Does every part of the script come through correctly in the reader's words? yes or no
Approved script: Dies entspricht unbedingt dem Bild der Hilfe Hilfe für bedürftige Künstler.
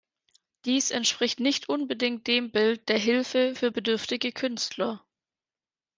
no